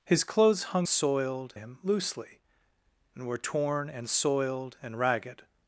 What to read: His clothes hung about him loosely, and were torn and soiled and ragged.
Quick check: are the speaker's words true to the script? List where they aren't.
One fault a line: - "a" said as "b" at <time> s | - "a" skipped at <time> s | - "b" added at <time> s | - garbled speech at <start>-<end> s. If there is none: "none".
- "about" said as "soiled" at 0.9 s